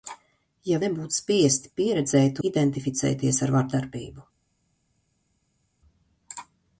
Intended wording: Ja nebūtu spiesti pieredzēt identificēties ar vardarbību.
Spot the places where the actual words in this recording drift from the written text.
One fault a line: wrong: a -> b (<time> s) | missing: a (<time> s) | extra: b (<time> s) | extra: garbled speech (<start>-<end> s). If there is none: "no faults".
no faults